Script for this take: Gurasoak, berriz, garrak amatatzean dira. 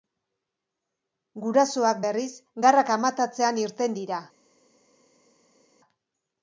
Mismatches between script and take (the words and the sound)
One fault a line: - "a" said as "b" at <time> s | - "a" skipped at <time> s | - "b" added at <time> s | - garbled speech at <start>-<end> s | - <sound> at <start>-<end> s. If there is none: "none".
- "irten" added at 3.6 s